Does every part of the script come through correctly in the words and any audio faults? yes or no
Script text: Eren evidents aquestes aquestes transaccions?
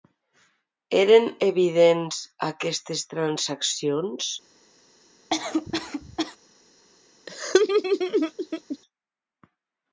no